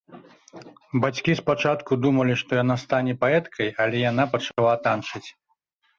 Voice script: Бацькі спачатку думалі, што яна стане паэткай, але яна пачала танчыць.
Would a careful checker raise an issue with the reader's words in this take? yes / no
no